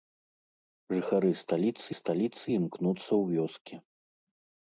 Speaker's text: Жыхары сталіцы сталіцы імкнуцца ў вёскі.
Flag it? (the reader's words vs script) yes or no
no